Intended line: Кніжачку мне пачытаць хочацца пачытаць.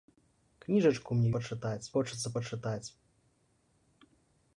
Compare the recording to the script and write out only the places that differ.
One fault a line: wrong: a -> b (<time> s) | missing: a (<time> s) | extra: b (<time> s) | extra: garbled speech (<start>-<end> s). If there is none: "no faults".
no faults